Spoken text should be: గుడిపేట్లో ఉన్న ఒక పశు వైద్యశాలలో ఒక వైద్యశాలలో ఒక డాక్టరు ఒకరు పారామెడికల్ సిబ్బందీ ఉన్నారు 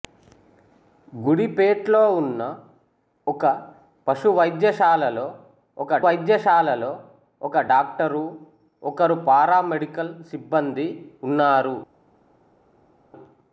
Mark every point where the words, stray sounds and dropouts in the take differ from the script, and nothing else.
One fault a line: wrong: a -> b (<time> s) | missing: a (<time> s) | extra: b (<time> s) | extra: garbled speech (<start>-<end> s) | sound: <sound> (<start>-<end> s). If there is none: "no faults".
no faults